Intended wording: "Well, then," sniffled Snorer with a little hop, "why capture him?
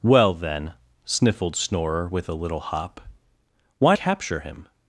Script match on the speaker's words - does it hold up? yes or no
yes